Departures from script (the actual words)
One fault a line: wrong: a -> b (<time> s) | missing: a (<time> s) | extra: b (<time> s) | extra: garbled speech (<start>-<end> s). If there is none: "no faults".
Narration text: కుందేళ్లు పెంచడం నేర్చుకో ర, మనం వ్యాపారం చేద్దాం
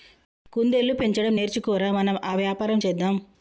extra: ఆ (2.2 s)